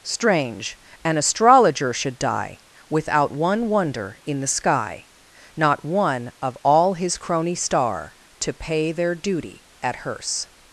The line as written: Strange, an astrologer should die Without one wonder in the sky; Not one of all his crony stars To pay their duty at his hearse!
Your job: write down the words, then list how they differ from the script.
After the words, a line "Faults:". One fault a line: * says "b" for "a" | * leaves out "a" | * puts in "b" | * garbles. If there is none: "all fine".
Strange, an astrologer should die Without one wonder in the sky; Not one of all his crony star To pay their duty at hearse!
Faults:
* says "star" for "stars"
* leaves out "his"